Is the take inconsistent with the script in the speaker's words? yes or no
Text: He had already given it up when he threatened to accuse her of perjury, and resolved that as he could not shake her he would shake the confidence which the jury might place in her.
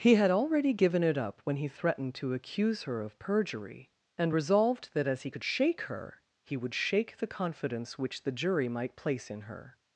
yes